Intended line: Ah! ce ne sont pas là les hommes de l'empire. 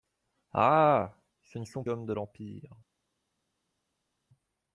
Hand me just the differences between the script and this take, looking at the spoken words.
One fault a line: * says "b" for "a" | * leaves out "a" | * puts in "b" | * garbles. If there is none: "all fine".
* leaves out "pas là les"